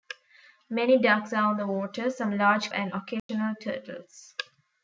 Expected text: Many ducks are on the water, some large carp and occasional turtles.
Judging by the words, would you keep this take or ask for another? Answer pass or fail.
fail